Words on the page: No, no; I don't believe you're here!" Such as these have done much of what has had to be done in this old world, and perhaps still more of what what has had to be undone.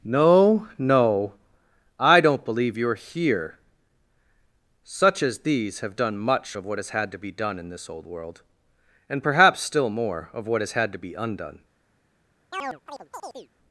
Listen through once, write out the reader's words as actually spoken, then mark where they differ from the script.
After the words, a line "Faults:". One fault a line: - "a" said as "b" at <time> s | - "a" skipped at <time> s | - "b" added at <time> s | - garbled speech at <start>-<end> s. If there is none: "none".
No, no; I don't believe you're here!" Such as these have done much of what has had to be done in this old world, and perhaps still more of what has had to be undone.
Faults:
- "what" skipped at 10.6 s